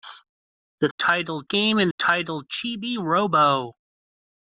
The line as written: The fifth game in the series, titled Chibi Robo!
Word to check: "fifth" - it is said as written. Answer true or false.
false